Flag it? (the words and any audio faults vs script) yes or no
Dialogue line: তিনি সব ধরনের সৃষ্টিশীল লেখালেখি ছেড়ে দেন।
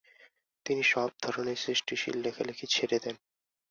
no